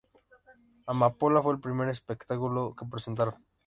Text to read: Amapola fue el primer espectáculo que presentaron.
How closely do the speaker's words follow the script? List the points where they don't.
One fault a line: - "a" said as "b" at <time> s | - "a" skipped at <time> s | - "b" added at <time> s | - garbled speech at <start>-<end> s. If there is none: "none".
none